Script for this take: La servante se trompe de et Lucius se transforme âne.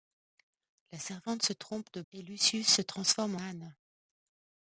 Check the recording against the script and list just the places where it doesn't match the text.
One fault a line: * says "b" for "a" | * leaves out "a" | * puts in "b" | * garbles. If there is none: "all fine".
all fine